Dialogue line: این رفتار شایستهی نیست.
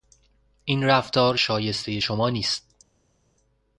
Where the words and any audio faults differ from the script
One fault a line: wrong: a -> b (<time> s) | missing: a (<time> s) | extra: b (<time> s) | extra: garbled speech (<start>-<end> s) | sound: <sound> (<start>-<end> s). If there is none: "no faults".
extra: شما (2.0 s)